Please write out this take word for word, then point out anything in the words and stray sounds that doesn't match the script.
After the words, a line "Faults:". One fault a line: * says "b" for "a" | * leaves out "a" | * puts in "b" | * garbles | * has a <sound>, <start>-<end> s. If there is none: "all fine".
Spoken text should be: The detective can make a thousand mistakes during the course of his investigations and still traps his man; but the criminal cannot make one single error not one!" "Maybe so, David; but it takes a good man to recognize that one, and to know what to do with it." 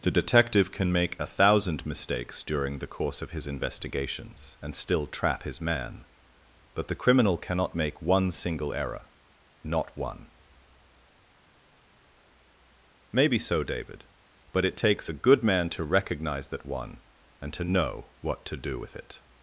The detective can make a thousand mistakes during the course of his investigations and still trap his man; but the criminal cannot make one single error not one!" "Maybe so, David; but it takes a good man to recognize that one, and to know what to do with it."
Faults:
* says "trap" for "traps"